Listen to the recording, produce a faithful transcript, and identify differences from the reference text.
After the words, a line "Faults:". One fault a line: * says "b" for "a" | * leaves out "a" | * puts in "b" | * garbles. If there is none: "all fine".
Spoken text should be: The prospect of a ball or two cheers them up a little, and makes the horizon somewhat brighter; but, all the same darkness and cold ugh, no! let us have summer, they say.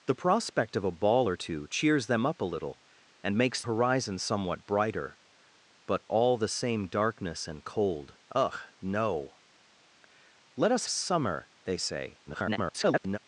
The prospect of a ball or two cheers them up a little, and makes horizon somewhat brighter; but, all the same darkness and cold ugh, no! let us summer, they say. [garbled]
Faults:
* leaves out "the"
* leaves out "have"
* garbles